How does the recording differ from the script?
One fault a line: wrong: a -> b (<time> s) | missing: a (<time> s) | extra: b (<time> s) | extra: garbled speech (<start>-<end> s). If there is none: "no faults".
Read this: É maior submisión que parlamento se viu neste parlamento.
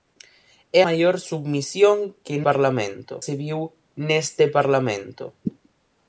no faults